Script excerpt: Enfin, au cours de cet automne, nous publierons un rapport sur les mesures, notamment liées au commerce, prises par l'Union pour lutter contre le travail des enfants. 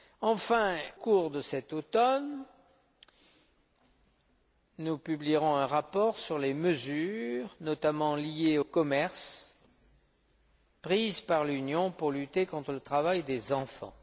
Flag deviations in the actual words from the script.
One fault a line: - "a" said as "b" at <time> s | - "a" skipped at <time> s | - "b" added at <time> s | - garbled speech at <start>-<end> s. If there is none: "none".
- "au" skipped at 0.8 s
- "au" skipped at 8.6 s